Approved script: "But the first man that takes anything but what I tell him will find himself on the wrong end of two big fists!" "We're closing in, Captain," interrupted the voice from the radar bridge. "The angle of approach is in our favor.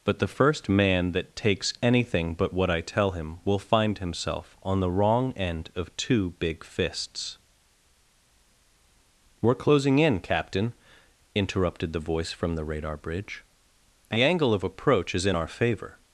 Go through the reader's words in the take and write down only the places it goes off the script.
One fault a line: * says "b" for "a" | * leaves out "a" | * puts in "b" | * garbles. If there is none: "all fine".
all fine